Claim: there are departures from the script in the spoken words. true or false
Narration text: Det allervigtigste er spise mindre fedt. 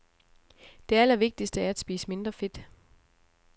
true